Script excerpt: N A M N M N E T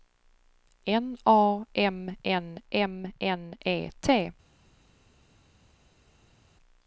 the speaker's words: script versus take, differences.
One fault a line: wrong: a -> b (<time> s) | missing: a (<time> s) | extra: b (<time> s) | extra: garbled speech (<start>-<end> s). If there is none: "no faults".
no faults